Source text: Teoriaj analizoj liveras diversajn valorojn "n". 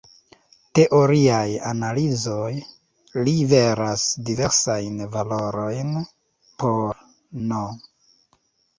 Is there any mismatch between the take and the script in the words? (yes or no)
yes